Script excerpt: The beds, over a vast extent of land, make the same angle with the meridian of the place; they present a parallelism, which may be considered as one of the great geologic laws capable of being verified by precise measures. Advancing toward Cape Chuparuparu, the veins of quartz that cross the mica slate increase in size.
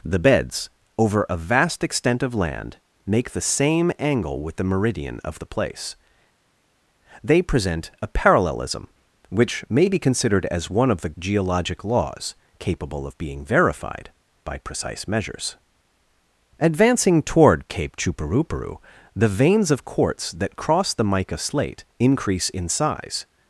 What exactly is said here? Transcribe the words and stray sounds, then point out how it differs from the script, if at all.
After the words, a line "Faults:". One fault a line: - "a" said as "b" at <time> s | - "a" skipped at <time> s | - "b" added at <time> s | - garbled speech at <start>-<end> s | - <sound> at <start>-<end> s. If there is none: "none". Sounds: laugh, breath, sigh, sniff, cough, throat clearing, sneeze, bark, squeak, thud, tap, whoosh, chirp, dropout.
The beds, over a vast extent of land, make the same angle with the meridian of the place; they present a parallelism, which may be considered as one of the geologic laws capable of being verified by precise measures. Advancing toward Cape Chuparuparu, the veins of quartz that cross the mica slate increase in size.
Faults:
- "great" skipped at 11.1 s